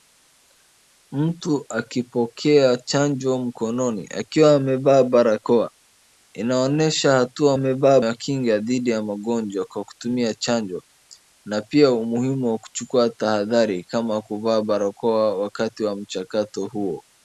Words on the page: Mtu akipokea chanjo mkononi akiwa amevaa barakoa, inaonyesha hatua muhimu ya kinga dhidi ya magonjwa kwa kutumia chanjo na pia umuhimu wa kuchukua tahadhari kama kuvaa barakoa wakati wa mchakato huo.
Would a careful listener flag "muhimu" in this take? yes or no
yes